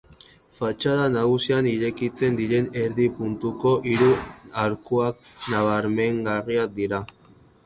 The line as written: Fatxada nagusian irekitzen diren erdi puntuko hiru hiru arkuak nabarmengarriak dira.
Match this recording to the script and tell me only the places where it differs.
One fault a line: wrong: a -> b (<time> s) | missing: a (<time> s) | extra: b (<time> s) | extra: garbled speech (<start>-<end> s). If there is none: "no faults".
missing: hiru (4.1 s)